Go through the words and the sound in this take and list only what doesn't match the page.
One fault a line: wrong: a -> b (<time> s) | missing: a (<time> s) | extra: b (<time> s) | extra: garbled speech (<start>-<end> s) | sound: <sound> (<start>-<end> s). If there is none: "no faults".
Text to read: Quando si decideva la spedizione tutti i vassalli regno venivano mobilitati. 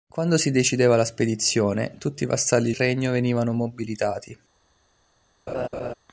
sound: laugh (5.5-5.9 s)